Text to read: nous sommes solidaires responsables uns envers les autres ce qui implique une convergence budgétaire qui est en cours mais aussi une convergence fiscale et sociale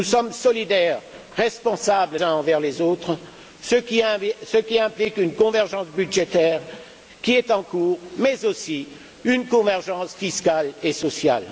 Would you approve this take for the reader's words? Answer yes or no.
yes